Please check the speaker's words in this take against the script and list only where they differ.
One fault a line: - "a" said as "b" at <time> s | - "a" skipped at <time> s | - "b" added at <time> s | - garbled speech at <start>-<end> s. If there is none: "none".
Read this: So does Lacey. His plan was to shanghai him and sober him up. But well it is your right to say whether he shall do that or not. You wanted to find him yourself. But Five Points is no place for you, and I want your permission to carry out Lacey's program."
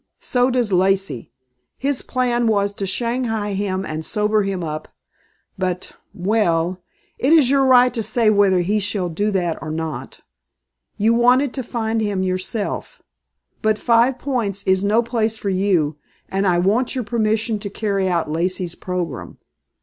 none